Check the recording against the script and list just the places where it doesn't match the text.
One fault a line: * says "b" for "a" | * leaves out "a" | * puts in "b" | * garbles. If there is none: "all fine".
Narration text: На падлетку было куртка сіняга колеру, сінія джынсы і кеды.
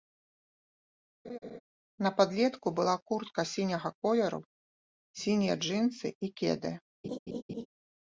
* says "была" for "было"